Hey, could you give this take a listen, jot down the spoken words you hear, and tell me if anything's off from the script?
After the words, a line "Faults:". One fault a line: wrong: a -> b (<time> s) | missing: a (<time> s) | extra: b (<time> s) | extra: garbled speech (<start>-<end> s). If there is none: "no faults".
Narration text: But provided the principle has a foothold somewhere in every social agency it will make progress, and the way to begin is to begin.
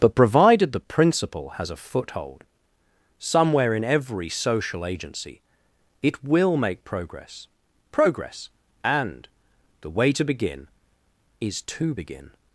But provided the principle has a foothold somewhere in every social agency it will make progress progress, and the way to begin is to begin.
Faults:
extra: progress (7.9 s)